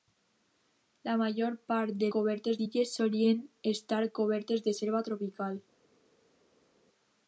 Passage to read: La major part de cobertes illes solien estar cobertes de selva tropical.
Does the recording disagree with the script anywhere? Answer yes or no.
no